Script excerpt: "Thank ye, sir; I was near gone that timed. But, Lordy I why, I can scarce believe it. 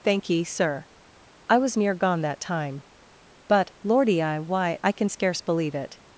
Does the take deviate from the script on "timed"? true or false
true